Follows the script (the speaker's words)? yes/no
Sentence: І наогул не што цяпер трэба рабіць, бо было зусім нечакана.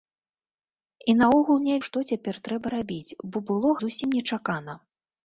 yes